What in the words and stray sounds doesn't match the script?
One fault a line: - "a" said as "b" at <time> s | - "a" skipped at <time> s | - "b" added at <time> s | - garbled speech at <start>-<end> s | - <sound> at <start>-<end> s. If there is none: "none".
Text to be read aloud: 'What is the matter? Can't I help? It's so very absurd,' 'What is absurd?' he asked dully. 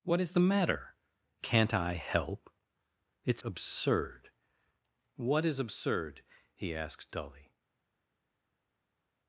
- "so very" skipped at 3.4 s